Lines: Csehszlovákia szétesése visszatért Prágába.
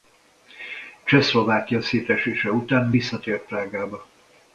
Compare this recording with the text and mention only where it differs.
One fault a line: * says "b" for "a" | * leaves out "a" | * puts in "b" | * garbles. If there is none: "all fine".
* puts in "után"